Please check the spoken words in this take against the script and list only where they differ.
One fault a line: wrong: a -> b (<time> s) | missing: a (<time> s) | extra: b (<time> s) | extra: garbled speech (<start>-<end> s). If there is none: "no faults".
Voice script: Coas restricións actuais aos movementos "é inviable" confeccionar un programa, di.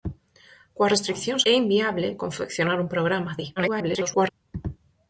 missing: actuais aos movementos (1.4 s)
extra: garbled speech (3.6-4.3 s)